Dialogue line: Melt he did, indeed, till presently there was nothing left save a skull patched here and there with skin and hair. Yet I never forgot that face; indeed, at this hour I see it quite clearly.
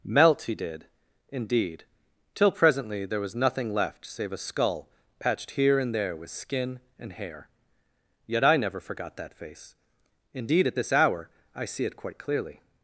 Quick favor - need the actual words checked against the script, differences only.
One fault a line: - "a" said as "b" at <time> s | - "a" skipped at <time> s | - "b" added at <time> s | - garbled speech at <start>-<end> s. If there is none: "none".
none